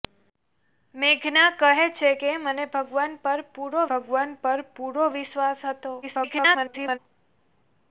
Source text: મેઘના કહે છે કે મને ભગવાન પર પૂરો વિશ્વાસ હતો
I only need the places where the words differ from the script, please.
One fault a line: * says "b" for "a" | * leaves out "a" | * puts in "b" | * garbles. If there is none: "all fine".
* puts in "ભગવાન પર પૂરો"
* garbles